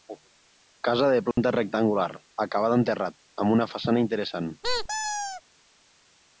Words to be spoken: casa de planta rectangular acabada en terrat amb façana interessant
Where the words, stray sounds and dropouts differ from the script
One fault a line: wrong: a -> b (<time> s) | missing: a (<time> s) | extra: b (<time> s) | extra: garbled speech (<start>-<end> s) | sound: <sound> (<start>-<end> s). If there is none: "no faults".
sound: dropout (1.3-1.4 s)
extra: una (3.6 s)
sound: squeak (4.6-5.4 s)